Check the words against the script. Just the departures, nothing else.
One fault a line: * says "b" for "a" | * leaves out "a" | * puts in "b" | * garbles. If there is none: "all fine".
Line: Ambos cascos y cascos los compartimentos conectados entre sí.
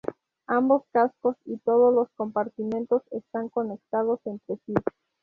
* says "todos" for "cascos"
* puts in "están"